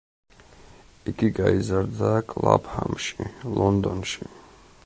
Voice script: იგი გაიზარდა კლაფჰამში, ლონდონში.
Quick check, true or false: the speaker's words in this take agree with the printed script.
true